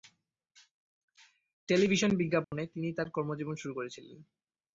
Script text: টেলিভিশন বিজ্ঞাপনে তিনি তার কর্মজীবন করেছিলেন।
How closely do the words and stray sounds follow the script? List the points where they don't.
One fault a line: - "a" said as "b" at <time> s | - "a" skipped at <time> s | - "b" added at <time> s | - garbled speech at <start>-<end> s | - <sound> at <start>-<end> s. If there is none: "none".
- dropout at 2.4-2.5 s
- "শুরু" added at 3.5 s